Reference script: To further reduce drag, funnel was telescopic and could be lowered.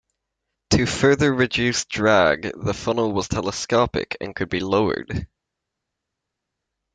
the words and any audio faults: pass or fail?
fail